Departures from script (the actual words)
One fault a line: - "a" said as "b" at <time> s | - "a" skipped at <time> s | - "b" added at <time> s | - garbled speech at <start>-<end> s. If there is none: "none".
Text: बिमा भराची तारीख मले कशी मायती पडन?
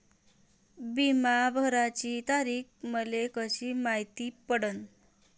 none